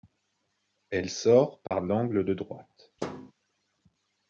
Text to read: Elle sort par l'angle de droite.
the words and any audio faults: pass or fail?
fail